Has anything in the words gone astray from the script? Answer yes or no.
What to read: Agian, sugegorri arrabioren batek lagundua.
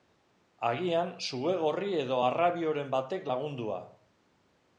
yes